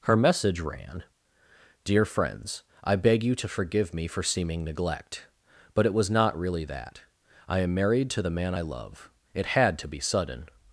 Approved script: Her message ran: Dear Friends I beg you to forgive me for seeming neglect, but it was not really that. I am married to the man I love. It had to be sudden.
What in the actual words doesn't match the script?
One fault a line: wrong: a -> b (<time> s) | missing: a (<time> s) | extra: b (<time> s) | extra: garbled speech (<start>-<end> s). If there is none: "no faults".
no faults